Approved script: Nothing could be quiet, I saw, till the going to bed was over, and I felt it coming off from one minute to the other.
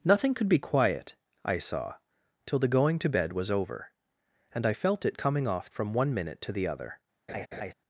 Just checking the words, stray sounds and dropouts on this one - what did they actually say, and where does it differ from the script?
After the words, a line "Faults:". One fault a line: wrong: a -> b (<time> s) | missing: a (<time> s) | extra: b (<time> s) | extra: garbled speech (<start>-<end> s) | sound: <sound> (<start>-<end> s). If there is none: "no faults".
Nothing could be quiet, I saw, till the going to bed was over, and I felt it coming off from one minute to the other.
Faults:
sound: laugh (7.3-7.7 s)